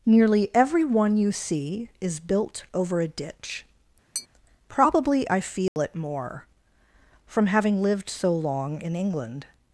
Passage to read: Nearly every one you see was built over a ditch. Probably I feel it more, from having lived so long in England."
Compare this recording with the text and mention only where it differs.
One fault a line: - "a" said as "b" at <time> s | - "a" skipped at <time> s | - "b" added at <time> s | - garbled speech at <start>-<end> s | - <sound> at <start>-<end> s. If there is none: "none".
- "was" said as "is" at 2.0 s
- tap at 4.1-4.3 s
- dropout at 5.7-5.8 s